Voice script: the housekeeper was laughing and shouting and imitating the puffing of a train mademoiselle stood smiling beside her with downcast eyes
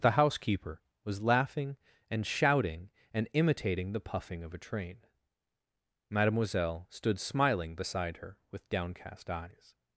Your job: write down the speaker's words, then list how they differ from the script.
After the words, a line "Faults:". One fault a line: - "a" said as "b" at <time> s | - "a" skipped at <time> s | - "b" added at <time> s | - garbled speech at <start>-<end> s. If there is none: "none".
the housekeeper was laughing and shouting and imitating the puffing of a train mademoiselle stood smiling beside her with downcast eyes
Faults:
none